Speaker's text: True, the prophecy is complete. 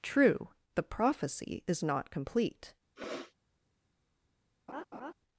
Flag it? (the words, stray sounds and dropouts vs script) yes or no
yes